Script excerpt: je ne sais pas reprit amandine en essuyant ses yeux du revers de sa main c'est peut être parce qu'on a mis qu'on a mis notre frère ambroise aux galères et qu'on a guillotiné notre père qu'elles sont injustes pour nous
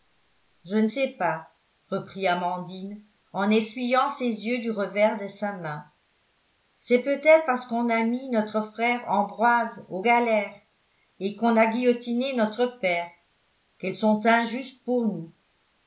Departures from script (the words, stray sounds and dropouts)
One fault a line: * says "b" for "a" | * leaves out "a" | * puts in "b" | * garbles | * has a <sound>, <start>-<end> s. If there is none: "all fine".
* leaves out "qu'on a mis"